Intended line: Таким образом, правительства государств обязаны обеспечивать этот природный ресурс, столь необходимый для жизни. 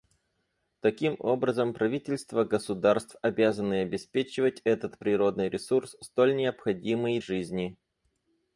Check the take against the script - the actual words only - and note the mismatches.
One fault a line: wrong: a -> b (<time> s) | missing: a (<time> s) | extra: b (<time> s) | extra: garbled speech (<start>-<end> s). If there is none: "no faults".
missing: для (7.2 s)